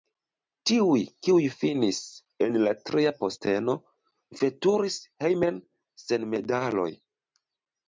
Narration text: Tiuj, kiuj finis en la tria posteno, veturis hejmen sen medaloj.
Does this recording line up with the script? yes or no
yes